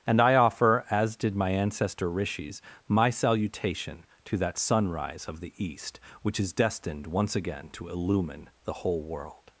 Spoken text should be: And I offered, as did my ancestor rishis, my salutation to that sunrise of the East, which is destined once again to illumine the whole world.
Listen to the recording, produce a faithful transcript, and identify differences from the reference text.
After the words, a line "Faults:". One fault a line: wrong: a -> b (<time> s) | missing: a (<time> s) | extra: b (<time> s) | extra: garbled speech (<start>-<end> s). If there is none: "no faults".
And I offer, as did my ancestor rishis, my salutation to that sunrise of the East, which is destined once again to illumine the whole world.
Faults:
wrong: offered -> offer (0.3 s)